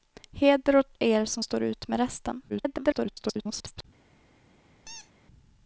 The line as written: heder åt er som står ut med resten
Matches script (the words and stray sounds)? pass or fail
fail